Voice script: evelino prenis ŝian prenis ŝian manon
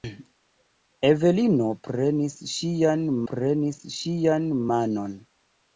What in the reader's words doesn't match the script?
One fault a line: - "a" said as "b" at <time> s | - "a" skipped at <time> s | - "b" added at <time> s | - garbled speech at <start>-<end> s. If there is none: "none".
none